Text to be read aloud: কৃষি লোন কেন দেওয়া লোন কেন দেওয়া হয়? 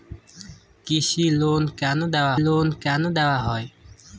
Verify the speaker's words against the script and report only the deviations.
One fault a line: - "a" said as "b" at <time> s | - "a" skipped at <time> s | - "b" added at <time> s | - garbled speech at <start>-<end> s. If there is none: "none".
none